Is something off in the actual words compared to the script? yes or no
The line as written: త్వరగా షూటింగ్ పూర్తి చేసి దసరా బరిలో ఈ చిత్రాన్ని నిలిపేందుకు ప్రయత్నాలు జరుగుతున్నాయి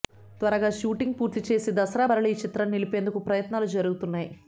no